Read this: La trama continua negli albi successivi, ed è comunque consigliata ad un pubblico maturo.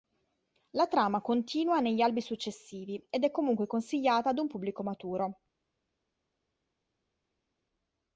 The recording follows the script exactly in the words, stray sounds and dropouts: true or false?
true